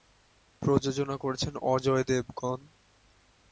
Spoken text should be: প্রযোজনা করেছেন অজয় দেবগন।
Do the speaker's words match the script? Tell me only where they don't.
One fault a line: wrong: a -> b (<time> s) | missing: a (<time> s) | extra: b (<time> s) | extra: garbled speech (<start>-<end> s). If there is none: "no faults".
no faults